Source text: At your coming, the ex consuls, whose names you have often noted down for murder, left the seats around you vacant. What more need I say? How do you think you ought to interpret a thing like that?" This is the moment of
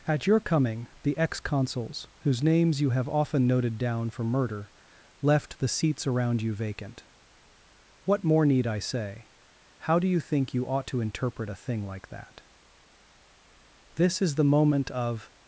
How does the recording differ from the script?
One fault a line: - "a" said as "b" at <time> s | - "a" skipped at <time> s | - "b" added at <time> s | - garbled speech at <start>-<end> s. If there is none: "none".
none